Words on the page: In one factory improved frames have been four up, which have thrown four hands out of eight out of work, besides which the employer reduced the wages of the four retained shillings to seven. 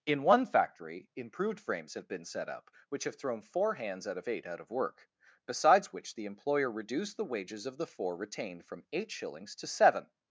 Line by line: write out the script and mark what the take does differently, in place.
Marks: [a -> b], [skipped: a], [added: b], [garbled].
In one factory improved frames have been [four -> set] up, which have thrown four hands out of eight out of work, besides which the employer reduced the wages of the four retained [added: from eight] shillings to seven.